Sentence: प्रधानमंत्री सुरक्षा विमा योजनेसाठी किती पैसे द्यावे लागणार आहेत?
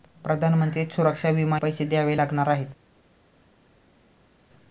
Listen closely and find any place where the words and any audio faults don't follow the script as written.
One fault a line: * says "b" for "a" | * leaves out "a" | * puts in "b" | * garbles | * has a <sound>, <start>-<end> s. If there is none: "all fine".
* leaves out "योजनेसाठी किती"